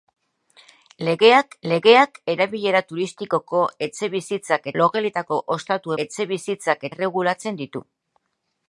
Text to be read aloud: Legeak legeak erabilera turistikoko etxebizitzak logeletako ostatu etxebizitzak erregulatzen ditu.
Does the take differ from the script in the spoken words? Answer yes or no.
no